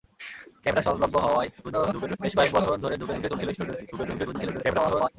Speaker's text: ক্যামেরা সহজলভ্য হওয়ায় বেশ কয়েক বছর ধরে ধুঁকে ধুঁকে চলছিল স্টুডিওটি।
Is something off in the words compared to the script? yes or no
yes